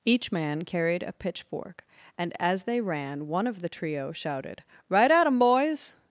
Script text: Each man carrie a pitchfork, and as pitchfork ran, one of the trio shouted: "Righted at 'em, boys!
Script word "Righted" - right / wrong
wrong